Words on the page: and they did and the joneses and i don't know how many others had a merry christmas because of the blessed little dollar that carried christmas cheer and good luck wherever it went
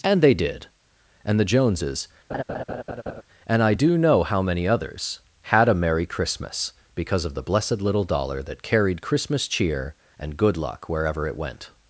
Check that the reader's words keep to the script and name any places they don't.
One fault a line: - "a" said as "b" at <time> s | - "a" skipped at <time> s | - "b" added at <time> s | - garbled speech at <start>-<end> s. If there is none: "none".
- "don't" said as "do" at 3.7 s